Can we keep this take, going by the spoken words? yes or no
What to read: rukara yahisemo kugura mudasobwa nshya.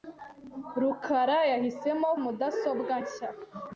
no